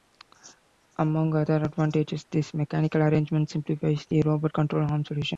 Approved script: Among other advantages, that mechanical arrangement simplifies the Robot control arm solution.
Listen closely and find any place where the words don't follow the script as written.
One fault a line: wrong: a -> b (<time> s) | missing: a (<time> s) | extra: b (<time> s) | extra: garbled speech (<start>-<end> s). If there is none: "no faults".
wrong: that -> this (2.3 s)